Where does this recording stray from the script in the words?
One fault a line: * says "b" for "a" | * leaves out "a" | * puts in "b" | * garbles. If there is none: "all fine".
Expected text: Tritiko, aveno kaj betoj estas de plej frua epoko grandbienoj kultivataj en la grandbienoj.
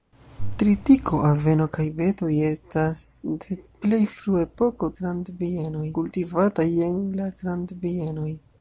all fine